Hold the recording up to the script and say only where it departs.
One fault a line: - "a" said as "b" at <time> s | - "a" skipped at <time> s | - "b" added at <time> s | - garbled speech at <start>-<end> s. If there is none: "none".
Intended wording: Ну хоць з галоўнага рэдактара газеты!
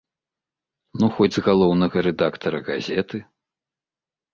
none